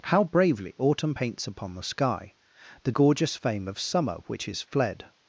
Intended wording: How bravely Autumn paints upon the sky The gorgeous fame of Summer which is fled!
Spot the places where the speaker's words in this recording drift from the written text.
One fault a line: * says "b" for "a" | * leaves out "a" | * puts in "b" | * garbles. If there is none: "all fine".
all fine